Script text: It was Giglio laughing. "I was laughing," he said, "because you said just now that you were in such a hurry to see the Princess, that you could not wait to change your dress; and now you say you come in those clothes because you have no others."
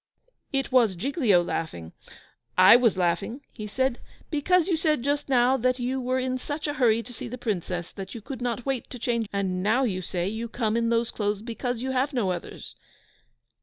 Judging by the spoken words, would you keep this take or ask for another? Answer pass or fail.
fail